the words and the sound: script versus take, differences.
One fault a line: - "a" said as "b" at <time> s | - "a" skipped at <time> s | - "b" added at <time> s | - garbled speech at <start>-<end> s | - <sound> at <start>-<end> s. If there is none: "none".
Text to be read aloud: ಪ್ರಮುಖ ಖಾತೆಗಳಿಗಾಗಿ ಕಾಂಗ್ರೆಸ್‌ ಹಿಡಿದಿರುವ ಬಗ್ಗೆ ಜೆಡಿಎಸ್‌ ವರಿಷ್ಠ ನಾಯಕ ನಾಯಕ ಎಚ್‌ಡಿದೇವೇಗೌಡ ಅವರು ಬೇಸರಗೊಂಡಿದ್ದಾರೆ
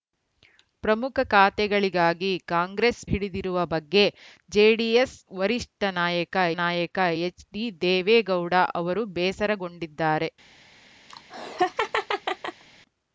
- laugh at 11.1-12.6 s